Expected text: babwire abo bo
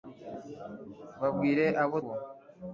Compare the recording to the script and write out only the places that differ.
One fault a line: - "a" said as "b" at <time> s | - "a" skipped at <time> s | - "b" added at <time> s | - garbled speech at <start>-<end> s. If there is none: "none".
none